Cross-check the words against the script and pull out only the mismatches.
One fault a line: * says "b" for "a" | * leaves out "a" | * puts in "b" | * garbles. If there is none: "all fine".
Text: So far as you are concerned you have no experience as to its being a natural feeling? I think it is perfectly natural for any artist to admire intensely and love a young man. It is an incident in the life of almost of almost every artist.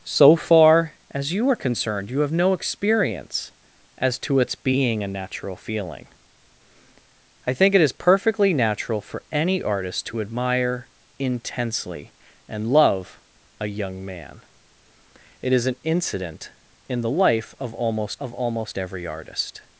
all fine